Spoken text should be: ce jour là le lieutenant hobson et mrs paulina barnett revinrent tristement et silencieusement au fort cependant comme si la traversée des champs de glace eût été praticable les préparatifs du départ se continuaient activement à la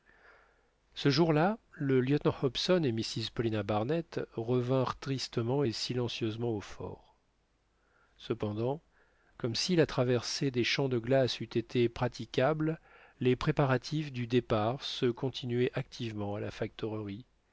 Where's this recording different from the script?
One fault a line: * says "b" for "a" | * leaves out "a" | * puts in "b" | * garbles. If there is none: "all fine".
all fine